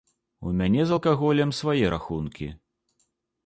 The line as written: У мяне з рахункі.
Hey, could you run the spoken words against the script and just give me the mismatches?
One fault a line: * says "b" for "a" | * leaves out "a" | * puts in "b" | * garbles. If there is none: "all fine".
* puts in "алкаголем свае"